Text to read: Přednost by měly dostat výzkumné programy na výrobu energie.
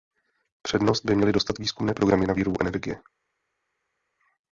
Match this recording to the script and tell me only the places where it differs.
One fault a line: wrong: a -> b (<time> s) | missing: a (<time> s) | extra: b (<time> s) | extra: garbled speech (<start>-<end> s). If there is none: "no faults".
no faults